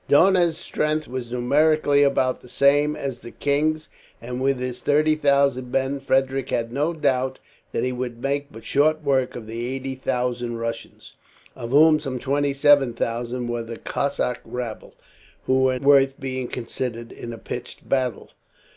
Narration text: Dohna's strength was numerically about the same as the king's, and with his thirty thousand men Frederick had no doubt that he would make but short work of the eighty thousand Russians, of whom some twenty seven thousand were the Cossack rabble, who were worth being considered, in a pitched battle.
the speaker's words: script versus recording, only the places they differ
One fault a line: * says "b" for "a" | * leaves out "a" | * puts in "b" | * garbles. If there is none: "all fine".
all fine